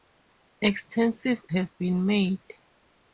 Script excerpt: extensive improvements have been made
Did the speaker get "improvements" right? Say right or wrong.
wrong